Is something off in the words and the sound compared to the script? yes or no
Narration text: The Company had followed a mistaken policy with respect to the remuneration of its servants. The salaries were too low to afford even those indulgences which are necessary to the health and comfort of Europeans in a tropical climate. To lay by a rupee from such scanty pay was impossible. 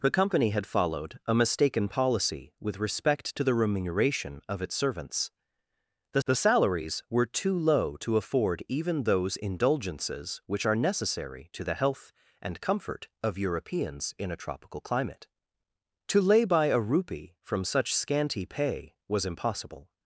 yes